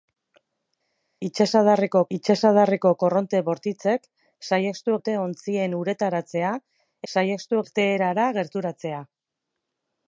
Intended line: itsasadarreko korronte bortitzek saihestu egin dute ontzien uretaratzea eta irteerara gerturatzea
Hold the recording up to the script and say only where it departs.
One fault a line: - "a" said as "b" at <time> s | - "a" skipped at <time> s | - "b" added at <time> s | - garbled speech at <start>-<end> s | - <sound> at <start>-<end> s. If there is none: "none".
- "itsasadarreko" added at 2.2 s
- "egin" skipped at 5.0 s
- "eta" said as "saihestu" at 7.1 s